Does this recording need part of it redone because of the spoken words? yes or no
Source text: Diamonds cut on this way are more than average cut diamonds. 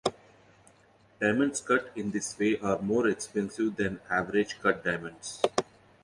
yes